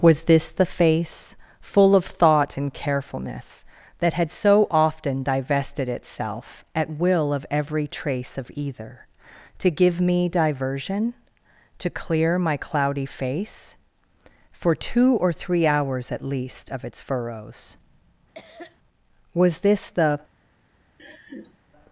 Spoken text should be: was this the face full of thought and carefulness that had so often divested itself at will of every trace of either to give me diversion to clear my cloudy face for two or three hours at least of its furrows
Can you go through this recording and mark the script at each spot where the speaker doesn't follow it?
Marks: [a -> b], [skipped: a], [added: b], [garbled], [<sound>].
was this the face full of thought and carefulness that had so often divested itself at will of every trace of either to give me diversion to clear my cloudy face for two or three hours at least of its furrows [cough] [added: was this the] [laugh]